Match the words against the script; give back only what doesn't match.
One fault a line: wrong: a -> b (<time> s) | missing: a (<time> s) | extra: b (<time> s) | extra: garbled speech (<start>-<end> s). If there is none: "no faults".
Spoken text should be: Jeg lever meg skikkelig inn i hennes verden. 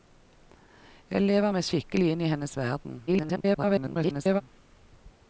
extra: garbled speech (3.1-4.4 s)